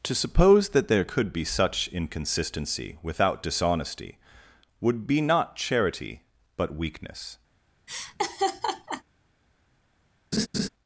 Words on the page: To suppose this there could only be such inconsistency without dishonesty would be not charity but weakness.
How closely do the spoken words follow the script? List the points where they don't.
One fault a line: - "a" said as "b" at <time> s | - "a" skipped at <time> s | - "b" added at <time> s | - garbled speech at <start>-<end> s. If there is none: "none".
- "this" said as "that" at 0.7 s
- "only" skipped at 1.3 s